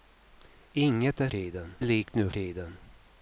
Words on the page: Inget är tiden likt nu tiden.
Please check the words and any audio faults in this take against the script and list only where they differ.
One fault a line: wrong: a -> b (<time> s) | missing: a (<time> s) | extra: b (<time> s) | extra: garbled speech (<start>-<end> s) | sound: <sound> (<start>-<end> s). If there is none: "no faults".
no faults